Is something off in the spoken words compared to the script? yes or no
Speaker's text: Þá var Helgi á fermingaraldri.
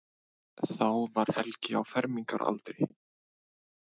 no